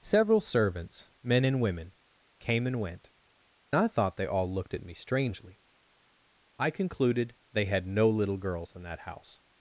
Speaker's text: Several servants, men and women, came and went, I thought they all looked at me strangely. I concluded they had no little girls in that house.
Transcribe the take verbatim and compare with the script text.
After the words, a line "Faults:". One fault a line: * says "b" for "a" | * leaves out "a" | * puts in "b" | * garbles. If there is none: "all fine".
Several servants, men and women, came and went, I thought they all looked at me strangely. I concluded they had no little girls in that house.
Faults:
all fine